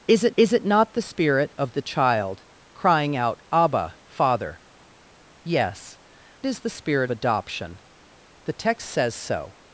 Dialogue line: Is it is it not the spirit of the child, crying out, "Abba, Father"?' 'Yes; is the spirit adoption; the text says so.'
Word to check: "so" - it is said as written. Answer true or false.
true